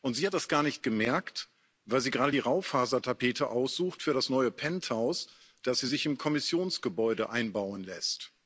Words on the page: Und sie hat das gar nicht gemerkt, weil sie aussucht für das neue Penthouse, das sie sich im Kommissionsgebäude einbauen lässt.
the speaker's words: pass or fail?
fail